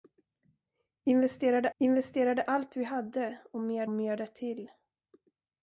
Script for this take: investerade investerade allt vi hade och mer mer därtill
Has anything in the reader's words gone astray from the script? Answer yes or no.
no